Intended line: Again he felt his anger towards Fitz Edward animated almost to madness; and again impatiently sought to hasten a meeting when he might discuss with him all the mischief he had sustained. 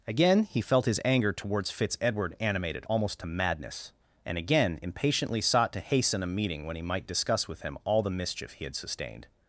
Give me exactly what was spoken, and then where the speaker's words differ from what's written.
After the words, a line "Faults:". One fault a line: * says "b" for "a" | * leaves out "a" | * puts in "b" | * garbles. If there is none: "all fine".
Again he felt his anger towards Fitz Edward animated almost to madness; and again impatiently sought to hasten a meeting when he might discuss with him all the mischief he had sustained.
Faults:
all fine